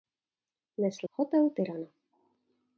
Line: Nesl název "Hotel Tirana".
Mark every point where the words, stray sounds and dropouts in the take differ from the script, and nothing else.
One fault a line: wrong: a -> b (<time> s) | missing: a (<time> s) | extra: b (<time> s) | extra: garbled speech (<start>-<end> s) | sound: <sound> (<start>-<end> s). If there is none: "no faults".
missing: název (1.1 s)